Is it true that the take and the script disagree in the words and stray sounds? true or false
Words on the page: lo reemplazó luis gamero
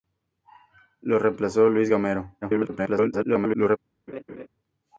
true